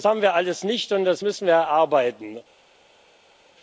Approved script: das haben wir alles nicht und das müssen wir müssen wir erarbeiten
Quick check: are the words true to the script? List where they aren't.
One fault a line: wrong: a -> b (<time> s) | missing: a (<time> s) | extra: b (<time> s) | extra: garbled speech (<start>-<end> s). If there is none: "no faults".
missing: müssen wir (1.5 s)